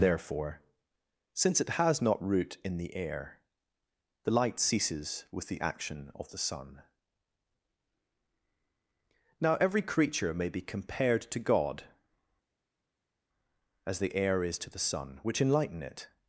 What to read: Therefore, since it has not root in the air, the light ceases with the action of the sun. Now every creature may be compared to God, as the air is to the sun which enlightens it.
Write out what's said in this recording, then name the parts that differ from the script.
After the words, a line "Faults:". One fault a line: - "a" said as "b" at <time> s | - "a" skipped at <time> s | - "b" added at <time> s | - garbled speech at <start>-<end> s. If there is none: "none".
Therefore, since it has not root in the air, the light ceases with the action of the sun. Now every creature may be compared to God, as the air is to the sun which enlighten it.
Faults:
- "enlightens" said as "enlighten" at 15.4 s